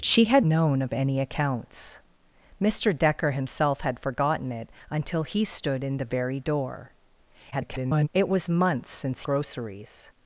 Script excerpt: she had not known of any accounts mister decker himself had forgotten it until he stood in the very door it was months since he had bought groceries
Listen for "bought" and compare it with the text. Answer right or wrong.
wrong